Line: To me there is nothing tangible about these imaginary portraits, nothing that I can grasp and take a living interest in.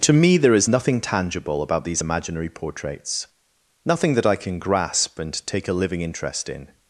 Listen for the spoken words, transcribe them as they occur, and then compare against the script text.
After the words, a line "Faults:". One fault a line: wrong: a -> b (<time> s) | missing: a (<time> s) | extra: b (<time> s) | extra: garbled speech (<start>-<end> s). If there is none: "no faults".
To me there is nothing tangible about these imaginary portraits, nothing that I can grasp and take a living interest in.
Faults:
no faults